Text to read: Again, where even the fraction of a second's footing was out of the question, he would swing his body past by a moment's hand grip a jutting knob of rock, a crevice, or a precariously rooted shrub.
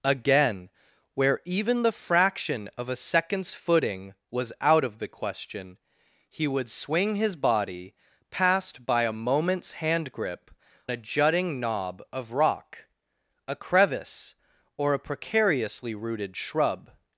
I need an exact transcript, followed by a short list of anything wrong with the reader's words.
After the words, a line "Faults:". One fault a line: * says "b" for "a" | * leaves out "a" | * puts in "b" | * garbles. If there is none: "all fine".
Again, where even the fraction of a second's footing was out of the question, he would swing his body past by a moment's hand grip a jutting knob of rock, a crevice, or a precariously rooted shrub.
Faults:
all fine